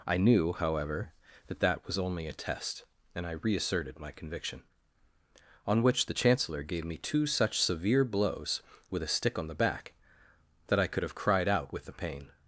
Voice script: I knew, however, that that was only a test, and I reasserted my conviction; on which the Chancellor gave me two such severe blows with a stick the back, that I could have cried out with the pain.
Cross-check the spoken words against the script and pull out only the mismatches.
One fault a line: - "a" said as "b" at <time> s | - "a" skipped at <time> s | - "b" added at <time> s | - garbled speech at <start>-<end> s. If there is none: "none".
- "on" added at 9.4 s